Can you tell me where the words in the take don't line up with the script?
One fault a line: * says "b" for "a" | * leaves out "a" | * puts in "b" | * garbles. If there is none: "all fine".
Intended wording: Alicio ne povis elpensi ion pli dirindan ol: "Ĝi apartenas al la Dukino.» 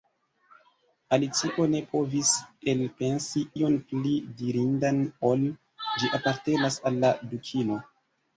all fine